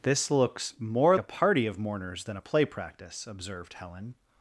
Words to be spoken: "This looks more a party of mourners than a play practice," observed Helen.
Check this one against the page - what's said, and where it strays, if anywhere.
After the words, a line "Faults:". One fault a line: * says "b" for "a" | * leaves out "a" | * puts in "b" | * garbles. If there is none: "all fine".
"This looks more a party of mourners than a play practice," observed Helen.
Faults:
all fine